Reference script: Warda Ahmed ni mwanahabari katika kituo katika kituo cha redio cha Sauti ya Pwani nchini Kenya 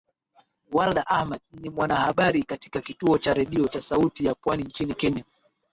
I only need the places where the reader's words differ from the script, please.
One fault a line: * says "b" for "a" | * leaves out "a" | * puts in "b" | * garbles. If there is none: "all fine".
* leaves out "katika kituo"